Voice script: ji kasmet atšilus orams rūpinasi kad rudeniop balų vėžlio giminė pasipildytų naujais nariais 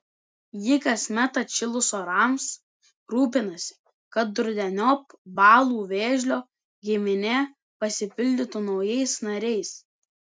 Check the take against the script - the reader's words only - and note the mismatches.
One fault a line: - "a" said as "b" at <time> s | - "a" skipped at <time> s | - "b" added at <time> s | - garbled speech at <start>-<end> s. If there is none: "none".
none